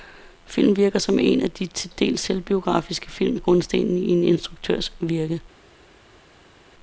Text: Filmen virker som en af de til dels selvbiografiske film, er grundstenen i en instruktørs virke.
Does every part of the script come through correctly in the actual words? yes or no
yes